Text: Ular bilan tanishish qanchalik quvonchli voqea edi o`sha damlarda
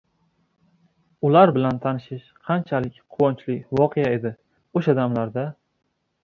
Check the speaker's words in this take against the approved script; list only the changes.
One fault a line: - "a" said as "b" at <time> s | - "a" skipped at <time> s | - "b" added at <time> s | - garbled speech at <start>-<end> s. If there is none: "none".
none